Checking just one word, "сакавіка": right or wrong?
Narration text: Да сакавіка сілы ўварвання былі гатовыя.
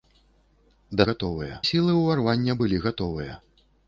wrong